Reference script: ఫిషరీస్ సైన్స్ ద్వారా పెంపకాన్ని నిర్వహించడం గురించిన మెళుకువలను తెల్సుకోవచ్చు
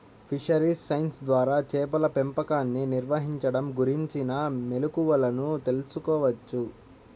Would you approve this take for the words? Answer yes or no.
no